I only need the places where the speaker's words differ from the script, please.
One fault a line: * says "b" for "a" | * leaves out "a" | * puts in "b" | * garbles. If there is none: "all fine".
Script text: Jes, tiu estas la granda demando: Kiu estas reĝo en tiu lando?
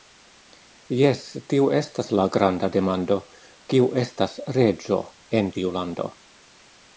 all fine